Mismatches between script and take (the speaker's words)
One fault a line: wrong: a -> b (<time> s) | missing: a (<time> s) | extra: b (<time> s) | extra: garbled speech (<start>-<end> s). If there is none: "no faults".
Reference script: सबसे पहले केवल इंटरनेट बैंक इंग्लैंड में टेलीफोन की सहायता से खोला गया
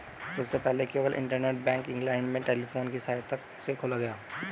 no faults